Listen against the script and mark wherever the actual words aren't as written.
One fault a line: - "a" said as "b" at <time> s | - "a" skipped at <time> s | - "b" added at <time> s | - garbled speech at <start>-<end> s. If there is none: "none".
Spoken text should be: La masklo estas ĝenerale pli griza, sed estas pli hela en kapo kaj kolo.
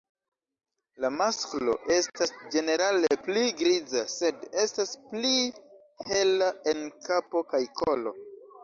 none